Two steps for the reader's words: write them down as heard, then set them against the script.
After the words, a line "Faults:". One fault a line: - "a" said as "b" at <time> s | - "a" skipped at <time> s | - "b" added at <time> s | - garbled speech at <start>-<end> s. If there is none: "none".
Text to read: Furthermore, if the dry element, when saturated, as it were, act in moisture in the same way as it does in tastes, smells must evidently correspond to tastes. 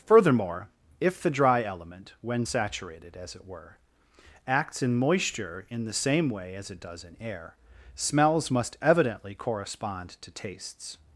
Furthermore, if the dry element, when saturated, as it were, acts in moisture in the same way as it does in air, smells must evidently correspond to tastes.
Faults:
- "act" said as "acts" at 4.5 s
- "tastes" said as "air" at 7.2 s